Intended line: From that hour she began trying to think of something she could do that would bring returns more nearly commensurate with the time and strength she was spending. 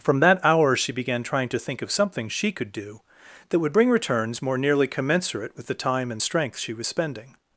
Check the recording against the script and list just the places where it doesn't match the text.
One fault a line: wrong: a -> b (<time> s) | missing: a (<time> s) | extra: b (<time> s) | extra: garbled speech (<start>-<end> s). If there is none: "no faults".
no faults